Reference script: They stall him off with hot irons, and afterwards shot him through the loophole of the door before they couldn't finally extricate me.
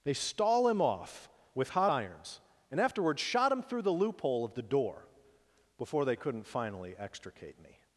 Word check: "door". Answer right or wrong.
right